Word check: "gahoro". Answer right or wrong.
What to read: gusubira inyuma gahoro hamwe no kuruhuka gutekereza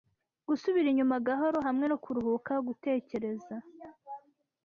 right